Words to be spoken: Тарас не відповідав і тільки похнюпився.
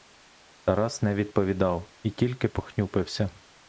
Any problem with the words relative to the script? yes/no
no